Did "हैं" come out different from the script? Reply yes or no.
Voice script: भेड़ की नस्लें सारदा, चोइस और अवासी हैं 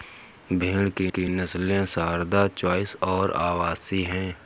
no